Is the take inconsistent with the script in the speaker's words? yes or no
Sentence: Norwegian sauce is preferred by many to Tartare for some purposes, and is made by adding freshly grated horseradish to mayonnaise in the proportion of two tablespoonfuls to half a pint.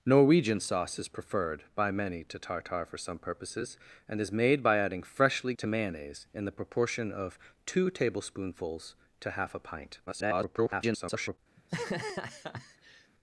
yes